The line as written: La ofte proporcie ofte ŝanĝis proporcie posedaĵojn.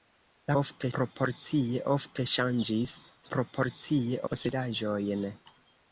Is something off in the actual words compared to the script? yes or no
no